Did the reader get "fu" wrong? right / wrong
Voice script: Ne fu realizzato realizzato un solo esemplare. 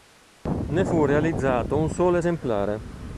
right